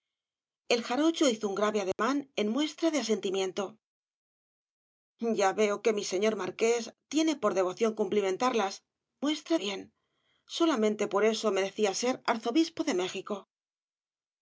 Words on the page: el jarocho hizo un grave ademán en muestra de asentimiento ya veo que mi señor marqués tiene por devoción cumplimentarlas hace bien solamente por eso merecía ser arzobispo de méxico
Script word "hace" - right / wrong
wrong